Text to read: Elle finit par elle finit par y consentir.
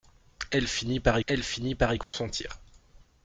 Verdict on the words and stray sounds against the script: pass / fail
fail